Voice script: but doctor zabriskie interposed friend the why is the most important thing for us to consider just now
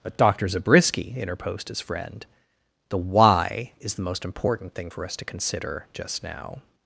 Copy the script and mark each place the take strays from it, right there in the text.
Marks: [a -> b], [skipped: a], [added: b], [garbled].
but doctor zabriskie interposed [added: his] friend the why is the most important thing for us to consider just now